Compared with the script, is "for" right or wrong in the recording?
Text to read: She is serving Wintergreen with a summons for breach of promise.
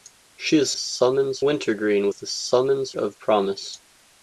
wrong